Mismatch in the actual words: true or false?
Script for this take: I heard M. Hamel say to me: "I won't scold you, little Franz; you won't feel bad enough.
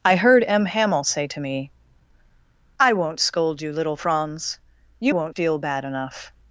false